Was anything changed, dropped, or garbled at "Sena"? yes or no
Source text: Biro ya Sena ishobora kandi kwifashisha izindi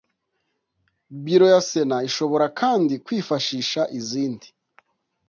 no